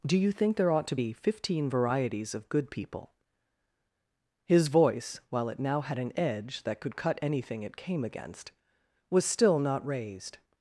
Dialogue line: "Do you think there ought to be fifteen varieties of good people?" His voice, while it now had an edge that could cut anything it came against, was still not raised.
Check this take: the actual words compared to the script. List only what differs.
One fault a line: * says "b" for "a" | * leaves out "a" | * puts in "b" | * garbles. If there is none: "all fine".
all fine